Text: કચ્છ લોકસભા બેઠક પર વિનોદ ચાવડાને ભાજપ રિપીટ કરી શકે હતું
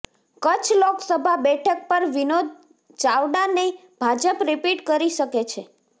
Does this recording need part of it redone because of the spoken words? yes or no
yes